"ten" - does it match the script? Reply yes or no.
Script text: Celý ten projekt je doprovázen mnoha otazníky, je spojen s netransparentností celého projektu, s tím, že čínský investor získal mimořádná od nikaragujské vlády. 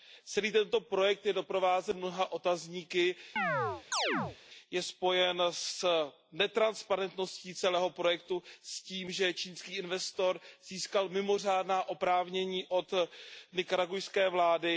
no